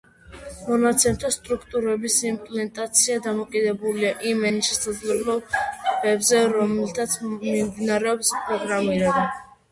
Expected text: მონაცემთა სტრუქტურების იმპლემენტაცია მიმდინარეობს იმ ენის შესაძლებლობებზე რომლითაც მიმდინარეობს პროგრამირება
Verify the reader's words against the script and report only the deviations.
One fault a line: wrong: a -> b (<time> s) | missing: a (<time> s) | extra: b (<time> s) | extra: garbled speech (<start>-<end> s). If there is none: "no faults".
wrong: მიმდინარეობს -> დამოკიდებულია (3.3 s)